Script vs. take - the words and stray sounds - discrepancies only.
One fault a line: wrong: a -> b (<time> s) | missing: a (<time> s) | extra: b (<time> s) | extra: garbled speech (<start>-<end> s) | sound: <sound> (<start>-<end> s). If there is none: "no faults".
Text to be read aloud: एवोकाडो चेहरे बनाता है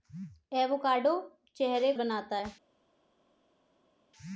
no faults